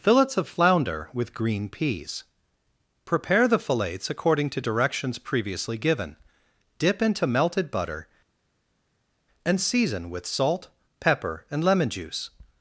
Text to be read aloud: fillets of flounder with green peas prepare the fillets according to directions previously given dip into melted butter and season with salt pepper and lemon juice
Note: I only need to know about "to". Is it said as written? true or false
true